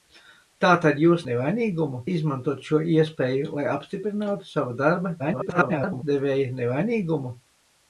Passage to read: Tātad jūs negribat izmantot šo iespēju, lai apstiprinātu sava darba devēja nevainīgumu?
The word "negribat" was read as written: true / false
false